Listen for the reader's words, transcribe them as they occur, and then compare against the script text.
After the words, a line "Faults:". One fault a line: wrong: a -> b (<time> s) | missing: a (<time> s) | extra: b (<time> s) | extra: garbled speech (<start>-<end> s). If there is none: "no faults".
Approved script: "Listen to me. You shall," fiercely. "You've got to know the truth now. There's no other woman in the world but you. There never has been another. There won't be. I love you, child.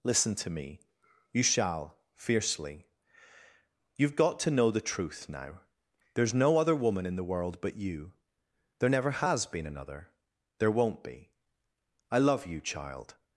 "Listen to me. You shall," fiercely. "You've got to know the truth now. There's no other woman in the world but you. There never has been another. There won't be. I love you, child.
Faults:
no faults